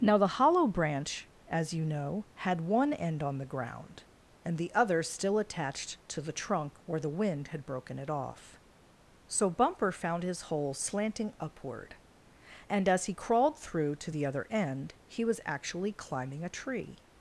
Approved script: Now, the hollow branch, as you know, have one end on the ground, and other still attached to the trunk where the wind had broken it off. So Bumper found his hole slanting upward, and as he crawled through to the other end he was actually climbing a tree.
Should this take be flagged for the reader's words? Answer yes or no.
yes